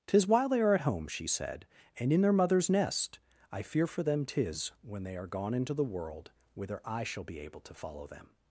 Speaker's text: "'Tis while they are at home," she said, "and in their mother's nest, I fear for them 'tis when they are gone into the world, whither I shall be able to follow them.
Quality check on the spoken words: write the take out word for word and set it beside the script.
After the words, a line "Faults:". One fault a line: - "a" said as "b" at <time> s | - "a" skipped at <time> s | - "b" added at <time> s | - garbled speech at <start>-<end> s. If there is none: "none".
"'Tis while they are at home," she said, "and in their mother's nest, I fear for them 'tis when they are gone into the world, whither I shall be able to follow them.
Faults:
none